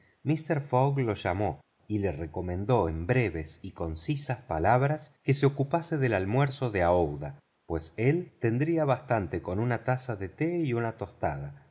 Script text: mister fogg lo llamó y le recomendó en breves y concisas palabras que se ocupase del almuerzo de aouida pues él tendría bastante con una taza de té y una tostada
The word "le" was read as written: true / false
true